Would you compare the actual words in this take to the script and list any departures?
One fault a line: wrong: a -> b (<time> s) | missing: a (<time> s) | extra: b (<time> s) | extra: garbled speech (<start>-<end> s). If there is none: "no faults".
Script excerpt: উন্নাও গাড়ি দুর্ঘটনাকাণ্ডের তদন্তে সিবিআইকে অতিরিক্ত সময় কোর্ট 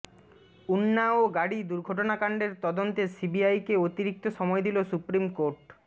extra: দিল সুপ্রিম (4.7 s)